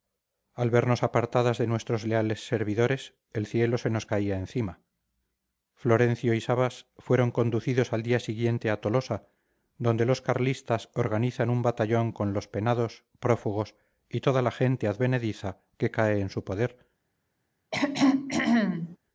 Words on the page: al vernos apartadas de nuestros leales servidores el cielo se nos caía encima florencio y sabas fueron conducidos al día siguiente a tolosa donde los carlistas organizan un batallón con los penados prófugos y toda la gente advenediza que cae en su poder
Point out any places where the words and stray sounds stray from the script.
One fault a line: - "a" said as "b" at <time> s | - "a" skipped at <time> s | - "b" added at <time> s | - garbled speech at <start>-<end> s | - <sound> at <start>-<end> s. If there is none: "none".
- throat clearing at 17.7-19.0 s